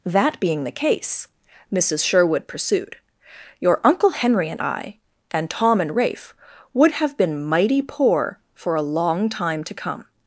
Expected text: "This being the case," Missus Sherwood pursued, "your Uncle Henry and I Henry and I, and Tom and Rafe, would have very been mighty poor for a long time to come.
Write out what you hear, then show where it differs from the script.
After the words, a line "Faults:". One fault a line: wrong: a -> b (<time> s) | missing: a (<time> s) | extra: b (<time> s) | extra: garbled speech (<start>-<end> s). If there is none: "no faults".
"That being the case," Missus Sherwood pursued, "your Uncle Henry and I, and Tom and Rafe, would have been mighty poor for a long time to come.
Faults:
wrong: This -> That (0.1 s)
missing: Henry (5.0 s)
missing: I and (5.5 s)
missing: very (7.2 s)